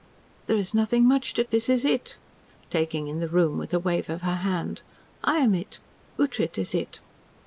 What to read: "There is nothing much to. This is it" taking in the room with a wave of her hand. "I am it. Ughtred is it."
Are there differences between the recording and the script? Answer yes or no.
no